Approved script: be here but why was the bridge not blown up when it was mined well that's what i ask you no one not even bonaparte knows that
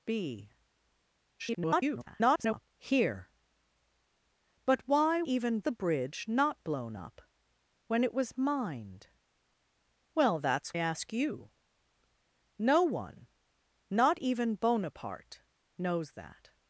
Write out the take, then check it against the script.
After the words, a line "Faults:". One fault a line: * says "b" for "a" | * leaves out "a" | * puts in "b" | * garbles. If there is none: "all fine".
be [garbled] here but why even the bridge not blown up when it was mined well that's ask you no one not even bonaparte knows that
Faults:
* garbles
* says "even" for "was"
* leaves out "what i"